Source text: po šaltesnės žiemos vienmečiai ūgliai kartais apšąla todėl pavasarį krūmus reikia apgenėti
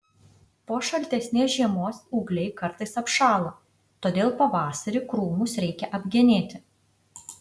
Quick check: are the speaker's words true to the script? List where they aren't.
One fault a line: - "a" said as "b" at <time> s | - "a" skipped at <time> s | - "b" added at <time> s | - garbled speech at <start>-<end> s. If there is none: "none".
- "vienmečiai" skipped at 2.0 s